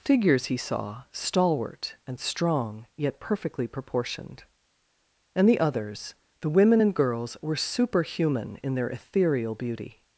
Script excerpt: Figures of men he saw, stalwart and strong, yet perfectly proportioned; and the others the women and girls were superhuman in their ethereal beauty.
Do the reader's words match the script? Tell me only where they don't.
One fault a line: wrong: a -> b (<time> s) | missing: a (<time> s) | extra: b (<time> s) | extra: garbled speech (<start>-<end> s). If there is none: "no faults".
missing: of men (0.5 s)